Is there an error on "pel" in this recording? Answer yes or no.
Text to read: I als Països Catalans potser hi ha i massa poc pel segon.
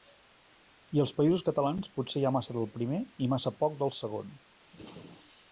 yes